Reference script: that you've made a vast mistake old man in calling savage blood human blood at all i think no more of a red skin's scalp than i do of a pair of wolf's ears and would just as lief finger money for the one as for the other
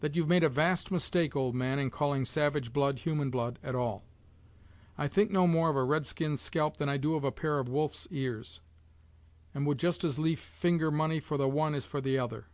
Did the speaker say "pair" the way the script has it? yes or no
yes